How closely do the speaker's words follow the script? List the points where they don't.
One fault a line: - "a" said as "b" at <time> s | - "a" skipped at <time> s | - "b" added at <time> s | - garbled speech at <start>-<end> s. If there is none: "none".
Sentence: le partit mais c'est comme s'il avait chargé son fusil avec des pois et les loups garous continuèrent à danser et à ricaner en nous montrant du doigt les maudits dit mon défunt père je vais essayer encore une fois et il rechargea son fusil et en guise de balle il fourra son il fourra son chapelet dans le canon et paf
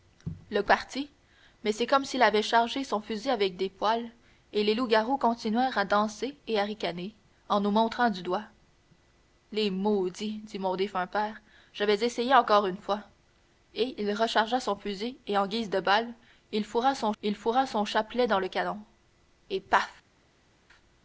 none